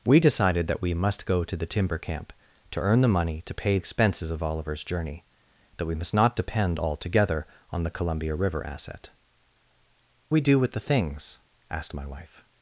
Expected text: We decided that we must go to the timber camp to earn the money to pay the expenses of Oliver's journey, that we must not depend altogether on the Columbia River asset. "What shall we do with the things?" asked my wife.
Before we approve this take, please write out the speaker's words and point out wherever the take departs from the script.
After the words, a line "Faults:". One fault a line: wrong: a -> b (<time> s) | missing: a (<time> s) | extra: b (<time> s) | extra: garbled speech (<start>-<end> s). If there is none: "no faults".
We decided that we must go to the timber camp to earn the money to pay expenses of Oliver's journey, that we must not depend altogether on the Columbia River asset. "We do with the things?" asked my wife.
Faults:
missing: the (3.8 s)
missing: What shall (9.1 s)